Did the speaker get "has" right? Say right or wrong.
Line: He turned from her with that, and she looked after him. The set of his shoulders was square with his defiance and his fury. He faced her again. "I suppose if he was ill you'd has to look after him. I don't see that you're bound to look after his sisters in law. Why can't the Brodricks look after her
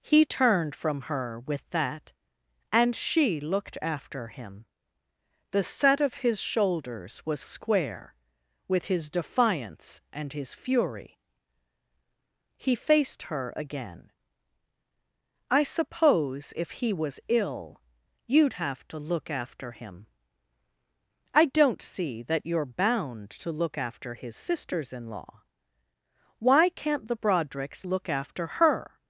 wrong